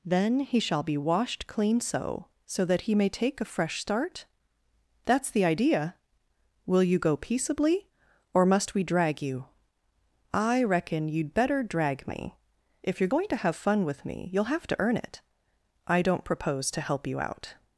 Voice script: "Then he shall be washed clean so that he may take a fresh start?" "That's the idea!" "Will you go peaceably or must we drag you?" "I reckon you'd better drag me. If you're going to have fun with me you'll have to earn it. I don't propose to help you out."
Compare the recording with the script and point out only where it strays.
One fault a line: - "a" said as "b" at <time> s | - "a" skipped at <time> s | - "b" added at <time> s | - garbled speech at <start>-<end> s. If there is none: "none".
- "so" added at 2.5 s